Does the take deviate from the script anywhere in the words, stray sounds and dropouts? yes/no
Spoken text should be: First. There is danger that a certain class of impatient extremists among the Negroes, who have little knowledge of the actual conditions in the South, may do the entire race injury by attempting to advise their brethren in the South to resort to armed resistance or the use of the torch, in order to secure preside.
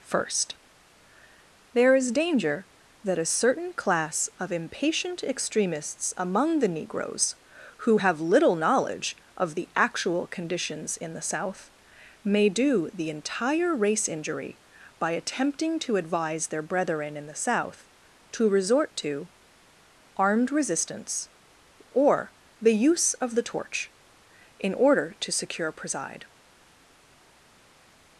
no